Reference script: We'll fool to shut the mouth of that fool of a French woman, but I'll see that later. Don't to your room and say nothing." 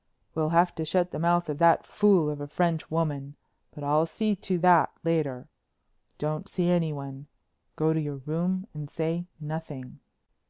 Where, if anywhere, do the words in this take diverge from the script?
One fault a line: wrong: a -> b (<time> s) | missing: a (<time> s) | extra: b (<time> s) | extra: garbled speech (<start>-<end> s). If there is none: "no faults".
wrong: fool -> have (0.5 s)
extra: to (4.4 s)
extra: see anyone Go (6.5 s)